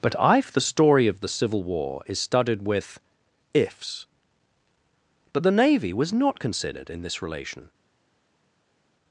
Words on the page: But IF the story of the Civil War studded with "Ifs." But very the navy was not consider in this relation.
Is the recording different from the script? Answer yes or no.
yes